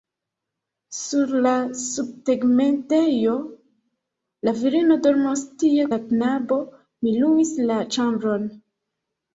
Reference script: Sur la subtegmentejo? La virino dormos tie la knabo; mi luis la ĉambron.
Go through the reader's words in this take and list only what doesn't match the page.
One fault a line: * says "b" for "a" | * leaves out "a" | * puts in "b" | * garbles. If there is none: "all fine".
all fine